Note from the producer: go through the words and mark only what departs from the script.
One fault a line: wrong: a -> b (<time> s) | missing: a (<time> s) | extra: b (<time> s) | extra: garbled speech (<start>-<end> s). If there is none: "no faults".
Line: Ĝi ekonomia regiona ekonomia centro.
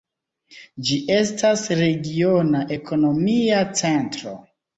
wrong: ekonomia -> estas (1.1 s)